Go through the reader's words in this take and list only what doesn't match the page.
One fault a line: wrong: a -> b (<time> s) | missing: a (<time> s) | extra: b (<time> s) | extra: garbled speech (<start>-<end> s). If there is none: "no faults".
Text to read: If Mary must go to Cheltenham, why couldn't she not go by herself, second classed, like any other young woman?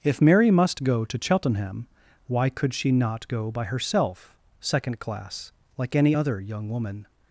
wrong: couldn't -> could (2.5 s)
wrong: classed -> class (5.0 s)